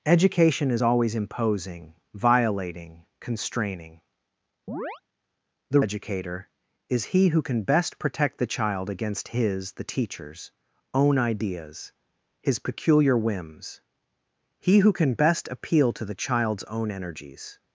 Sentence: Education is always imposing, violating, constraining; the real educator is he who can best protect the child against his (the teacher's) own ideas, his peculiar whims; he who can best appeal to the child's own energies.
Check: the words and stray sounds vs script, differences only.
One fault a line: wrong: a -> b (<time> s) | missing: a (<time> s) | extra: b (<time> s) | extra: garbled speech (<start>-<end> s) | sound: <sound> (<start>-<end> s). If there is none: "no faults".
sound: chirp (4.7-5.0 s)
missing: real (5.8 s)